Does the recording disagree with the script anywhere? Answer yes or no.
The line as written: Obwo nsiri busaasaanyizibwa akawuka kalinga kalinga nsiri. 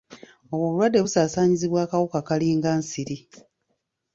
yes